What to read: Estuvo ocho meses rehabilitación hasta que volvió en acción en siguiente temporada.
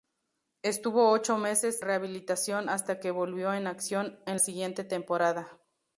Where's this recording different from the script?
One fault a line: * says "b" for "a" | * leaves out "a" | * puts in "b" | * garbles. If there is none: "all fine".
all fine